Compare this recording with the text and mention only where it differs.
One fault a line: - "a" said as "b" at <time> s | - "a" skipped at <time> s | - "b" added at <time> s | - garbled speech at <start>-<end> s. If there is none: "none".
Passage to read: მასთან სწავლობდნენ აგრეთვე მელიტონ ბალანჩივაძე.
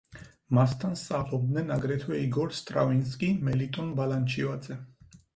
- "იგორ სტრავინსკი" added at 2.3 s